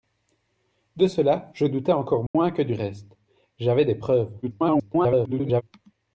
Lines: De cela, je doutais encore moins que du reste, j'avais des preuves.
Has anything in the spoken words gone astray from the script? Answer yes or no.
yes